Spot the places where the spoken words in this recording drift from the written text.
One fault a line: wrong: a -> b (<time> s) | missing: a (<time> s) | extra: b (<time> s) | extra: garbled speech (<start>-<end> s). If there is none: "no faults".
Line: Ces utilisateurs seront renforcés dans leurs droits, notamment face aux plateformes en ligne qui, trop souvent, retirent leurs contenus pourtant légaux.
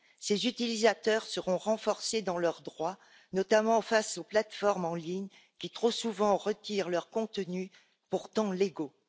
no faults